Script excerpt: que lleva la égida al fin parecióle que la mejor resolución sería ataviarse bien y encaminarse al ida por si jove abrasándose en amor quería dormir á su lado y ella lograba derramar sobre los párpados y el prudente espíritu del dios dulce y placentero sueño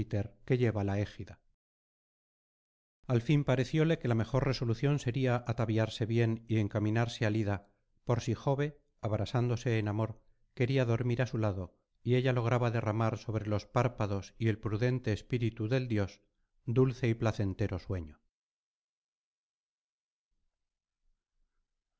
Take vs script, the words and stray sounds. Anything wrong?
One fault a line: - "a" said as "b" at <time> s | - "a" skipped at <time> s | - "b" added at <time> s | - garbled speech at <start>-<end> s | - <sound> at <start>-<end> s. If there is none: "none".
none